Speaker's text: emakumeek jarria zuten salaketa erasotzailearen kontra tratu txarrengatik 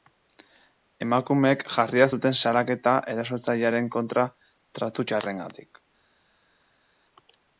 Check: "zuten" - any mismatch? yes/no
no